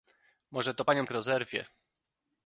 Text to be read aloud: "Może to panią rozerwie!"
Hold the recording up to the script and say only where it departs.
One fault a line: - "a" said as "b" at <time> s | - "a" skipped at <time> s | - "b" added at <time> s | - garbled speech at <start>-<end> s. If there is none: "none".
none